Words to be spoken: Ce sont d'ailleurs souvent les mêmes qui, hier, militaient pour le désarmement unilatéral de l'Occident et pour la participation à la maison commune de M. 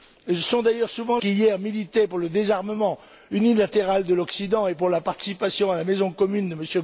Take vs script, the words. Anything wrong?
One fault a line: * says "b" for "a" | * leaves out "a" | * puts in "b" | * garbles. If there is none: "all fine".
* leaves out "les mêmes"